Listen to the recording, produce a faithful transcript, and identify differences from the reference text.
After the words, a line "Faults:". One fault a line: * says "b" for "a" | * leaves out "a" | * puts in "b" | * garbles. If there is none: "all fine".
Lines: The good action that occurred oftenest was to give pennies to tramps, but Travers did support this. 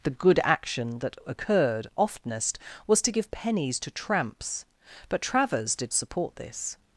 The good action that occurred oftenest was to give pennies to tramps, but Travers did support this.
Faults:
all fine